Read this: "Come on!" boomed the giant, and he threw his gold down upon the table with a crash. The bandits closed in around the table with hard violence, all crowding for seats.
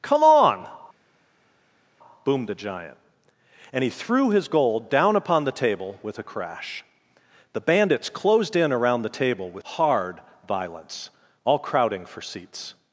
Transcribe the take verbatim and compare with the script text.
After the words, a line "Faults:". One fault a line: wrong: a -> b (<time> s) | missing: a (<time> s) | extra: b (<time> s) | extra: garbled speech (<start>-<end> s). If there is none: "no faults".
"Come on!" boomed the giant, and he threw his gold down upon the table with a crash. The bandits closed in around the table with hard violence, all crowding for seats.
Faults:
no faults